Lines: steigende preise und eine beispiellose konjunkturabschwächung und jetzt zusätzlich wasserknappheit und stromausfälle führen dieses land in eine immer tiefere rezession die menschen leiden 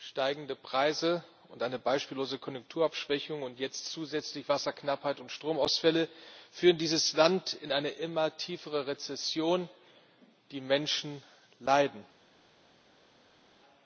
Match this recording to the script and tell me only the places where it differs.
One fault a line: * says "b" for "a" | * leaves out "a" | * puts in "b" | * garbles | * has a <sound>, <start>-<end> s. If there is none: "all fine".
all fine